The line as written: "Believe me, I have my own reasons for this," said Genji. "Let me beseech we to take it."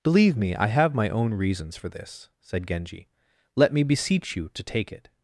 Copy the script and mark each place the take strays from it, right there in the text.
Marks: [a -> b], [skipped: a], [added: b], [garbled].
"Believe me, I have my own reasons for this," said Genji. "Let me beseech [we -> you] to take it."